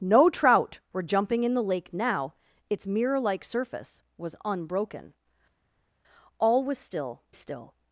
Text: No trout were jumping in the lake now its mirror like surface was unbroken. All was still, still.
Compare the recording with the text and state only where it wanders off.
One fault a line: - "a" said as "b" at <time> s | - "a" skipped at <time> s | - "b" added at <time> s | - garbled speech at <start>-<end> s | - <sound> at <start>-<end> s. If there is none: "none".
none